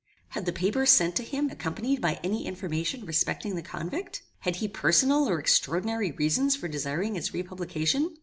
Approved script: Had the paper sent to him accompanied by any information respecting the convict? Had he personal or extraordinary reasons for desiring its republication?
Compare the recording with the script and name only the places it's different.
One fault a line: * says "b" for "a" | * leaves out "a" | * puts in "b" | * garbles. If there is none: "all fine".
all fine